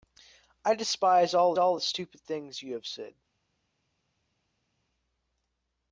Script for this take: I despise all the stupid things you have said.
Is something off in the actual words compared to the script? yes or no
yes